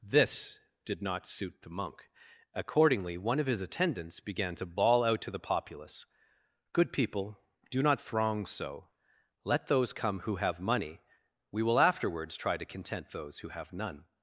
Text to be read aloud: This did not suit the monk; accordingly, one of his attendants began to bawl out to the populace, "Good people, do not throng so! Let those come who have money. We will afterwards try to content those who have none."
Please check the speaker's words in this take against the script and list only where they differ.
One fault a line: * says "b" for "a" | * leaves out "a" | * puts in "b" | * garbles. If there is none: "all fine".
all fine